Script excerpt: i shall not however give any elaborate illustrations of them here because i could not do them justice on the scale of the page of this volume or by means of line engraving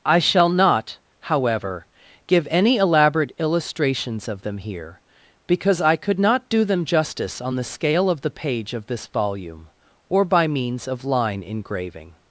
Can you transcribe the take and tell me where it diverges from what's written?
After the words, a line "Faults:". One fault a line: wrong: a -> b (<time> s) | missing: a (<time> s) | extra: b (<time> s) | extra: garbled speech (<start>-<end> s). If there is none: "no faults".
i shall not however give any elaborate illustrations of them here because i could not do them justice on the scale of the page of this volume or by means of line engraving
Faults:
no faults